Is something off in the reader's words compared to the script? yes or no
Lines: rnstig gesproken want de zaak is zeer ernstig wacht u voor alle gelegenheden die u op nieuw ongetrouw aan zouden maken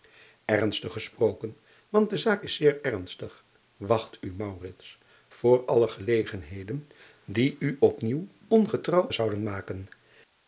yes